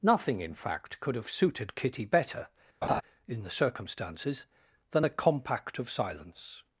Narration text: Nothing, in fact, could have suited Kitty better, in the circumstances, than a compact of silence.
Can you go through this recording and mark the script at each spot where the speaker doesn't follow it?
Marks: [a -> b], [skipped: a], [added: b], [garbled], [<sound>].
Nothing, in fact, could have suited Kitty better, [laugh] in the circumstances, than a compact of silence.